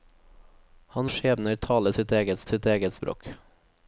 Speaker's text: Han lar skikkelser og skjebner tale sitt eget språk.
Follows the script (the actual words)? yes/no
no